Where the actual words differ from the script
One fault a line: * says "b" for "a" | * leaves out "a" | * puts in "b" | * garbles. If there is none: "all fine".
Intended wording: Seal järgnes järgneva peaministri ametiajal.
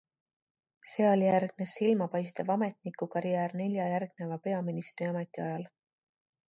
* puts in "silmapaistev ametnikukarjäär nelja"